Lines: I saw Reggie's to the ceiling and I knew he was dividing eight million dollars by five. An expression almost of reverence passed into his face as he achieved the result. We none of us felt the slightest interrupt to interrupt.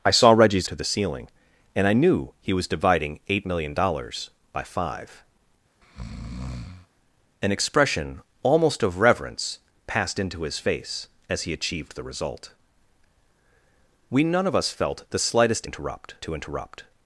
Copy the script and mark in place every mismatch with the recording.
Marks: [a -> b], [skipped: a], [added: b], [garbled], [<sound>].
I saw Reggie's to the ceiling and I knew he was dividing eight million dollars by five. [breath] An expression almost of reverence passed into his face as he achieved the result. We none of us felt the slightest interrupt to interrupt.